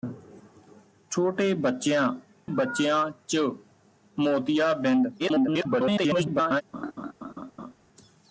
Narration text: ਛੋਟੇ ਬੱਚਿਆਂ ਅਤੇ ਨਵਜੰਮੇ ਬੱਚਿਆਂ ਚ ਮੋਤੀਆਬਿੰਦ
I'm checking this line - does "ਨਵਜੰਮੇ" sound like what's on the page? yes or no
no